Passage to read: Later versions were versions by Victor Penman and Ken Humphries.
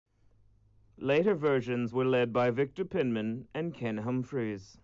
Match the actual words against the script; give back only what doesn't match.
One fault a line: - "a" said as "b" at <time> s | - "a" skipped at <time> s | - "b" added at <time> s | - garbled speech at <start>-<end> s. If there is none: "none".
- "versions" said as "led" at 2.0 s